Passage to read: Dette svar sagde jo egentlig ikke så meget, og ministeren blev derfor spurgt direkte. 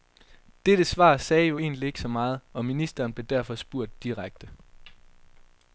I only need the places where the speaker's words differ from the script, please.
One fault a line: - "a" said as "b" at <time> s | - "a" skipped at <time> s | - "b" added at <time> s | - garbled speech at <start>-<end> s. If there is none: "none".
none